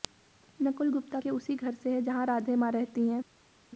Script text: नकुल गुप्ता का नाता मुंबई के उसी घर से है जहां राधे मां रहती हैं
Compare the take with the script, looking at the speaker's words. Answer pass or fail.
fail